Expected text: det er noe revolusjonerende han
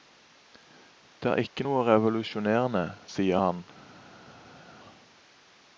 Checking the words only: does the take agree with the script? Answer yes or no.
no